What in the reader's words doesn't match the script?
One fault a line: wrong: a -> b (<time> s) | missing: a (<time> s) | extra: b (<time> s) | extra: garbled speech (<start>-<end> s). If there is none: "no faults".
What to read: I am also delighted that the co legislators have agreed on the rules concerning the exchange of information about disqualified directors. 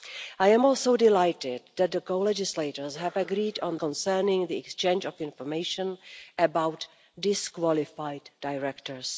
missing: the rules (3.8 s)